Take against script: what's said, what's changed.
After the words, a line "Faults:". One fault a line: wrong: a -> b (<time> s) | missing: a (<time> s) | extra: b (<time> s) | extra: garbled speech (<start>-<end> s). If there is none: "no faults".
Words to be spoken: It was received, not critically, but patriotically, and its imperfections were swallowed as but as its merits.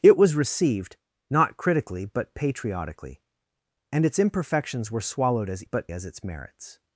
It was received, not critically, but patriotically, and its imperfections were swallowed as but as its merits.
Faults:
no faults